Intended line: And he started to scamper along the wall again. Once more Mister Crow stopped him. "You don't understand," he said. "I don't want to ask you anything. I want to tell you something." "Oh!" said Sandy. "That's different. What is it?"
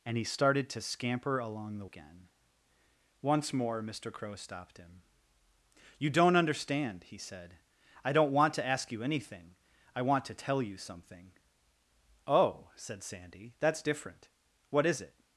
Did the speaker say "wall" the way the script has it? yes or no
no